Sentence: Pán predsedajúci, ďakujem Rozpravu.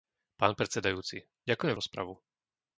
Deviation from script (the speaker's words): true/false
false